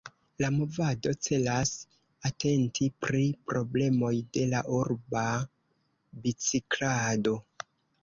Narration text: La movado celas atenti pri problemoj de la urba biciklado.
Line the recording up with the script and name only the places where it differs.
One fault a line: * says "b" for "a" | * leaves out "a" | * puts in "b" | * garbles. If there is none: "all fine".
all fine